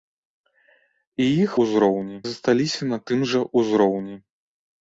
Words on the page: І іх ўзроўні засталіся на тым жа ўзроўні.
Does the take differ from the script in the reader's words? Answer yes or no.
no